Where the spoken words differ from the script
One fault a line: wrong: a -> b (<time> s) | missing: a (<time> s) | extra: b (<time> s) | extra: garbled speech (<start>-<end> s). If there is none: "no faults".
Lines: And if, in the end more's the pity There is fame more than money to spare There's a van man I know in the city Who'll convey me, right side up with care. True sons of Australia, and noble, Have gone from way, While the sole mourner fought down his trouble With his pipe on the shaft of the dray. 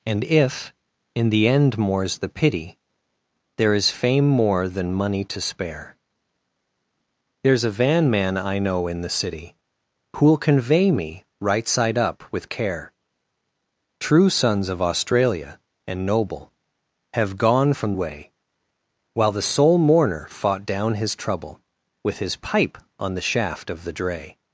no faults